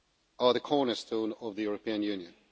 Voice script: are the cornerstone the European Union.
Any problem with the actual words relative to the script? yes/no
yes